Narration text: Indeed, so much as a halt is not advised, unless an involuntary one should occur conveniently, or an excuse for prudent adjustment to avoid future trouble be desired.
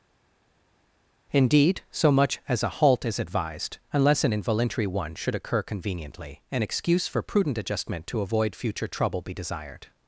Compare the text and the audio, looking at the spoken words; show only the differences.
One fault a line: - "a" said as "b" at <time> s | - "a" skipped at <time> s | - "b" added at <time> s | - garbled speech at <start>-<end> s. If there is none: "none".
- "not" skipped at 3.2 s
- "or" skipped at 6.4 s